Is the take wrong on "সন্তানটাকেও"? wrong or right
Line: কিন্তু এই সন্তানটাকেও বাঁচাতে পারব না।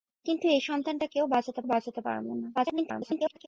right